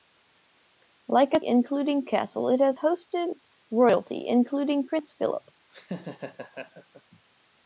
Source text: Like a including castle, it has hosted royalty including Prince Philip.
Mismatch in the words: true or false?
false